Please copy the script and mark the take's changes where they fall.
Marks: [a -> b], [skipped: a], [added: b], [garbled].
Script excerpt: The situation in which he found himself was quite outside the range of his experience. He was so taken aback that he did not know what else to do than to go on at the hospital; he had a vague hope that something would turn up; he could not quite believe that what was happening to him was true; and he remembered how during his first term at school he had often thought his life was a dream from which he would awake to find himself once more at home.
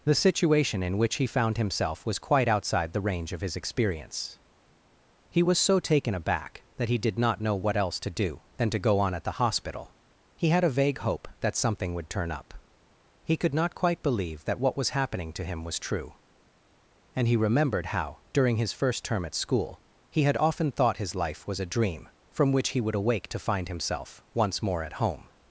The situation in which he found himself was quite outside the range of his experience. He was so taken aback that he did not know what else to do than to go on at the hospital; he had a vague hope that something would turn up; he could not quite believe that what was happening to him was true; and he remembered how during his first term at school he had often thought his life was a dream from which he would awake to find himself once more at home.